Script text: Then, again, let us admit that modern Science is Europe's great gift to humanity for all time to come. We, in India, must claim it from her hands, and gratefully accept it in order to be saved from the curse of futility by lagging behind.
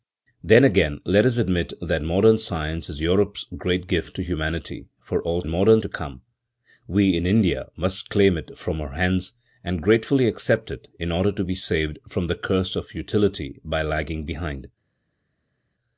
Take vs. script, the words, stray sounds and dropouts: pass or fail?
fail